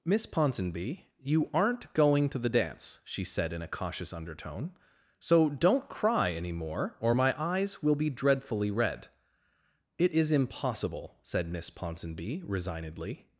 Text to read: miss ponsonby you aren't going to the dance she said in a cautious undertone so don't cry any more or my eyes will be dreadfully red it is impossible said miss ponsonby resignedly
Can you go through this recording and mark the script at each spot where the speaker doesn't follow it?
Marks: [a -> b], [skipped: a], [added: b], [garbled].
miss ponsonby you aren't going to the dance she said in a cautious undertone so don't cry any more or my eyes will be dreadfully red it is impossible said miss ponsonby resignedly